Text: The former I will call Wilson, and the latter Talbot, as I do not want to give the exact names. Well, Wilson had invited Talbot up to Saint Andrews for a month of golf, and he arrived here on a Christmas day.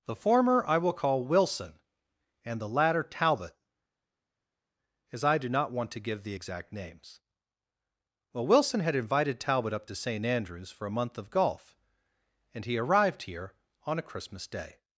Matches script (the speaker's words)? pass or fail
pass